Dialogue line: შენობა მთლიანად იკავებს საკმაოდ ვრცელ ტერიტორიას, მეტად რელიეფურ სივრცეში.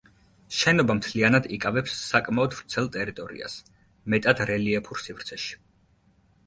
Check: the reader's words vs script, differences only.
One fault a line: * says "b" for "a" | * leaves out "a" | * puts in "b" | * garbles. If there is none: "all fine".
all fine